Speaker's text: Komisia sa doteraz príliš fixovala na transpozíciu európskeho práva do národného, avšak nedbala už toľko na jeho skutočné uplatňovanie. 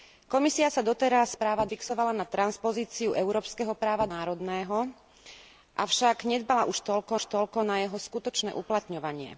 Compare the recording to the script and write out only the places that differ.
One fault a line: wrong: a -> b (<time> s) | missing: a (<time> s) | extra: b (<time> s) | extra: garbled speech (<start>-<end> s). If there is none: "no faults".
wrong: príliš -> práva (1.3 s)
missing: do (4.1 s)
extra: už toľko (7.1 s)